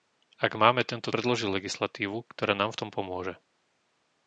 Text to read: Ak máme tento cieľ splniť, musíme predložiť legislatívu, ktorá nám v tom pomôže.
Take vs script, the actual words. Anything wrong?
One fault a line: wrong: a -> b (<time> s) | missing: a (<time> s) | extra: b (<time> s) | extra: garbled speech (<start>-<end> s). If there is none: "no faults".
missing: cieľ splniť musíme (1.1 s)